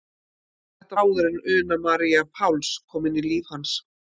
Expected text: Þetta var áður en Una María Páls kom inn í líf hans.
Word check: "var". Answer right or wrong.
wrong